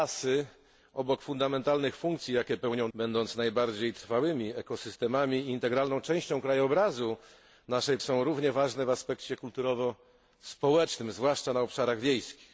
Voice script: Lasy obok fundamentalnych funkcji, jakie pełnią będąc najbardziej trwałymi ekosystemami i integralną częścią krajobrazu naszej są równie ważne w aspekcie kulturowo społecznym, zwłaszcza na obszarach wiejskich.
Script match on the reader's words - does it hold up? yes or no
yes